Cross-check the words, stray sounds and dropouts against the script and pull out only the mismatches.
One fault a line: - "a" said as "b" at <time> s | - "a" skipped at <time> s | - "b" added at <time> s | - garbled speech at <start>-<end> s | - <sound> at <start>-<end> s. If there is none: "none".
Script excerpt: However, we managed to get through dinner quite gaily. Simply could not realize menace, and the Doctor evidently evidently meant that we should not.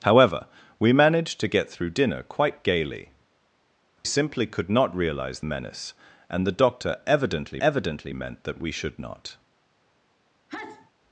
- sneeze at 10.5-10.9 s